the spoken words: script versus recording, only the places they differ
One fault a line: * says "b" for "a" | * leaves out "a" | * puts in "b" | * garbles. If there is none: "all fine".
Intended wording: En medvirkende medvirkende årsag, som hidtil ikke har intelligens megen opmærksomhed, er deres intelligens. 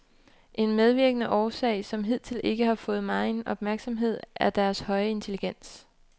* leaves out "medvirkende"
* says "fået" for "intelligens"
* puts in "høje"